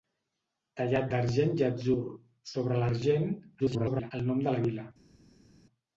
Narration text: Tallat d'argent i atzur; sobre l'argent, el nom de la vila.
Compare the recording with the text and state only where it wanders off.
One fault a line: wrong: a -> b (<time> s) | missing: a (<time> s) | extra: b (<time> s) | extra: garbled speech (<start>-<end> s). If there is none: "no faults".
extra: garbled speech (3.6-4.1 s)